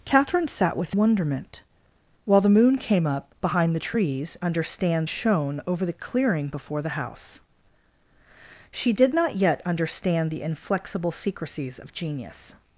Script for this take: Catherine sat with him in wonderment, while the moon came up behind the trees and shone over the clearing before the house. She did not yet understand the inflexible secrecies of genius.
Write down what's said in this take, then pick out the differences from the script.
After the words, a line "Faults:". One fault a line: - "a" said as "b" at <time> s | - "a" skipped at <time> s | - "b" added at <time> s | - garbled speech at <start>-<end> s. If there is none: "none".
Catherine sat with wonderment, while the moon came up behind the trees understand shone over the clearing before the house. She did not yet understand the inflexible secrecies of genius.
Faults:
- "him in" skipped at 0.9 s
- "and" said as "understand" at 4.4 s